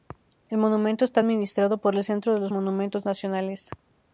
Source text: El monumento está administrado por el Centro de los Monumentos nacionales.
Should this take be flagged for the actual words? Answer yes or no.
no